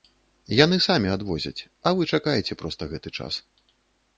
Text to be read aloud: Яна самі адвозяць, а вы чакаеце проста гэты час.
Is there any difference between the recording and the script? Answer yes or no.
yes